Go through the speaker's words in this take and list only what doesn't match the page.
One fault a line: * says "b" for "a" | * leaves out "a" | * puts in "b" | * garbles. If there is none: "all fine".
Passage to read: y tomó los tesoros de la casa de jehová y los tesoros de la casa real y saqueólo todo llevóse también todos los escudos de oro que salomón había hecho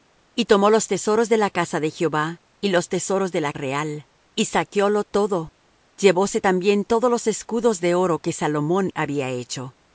* leaves out "casa"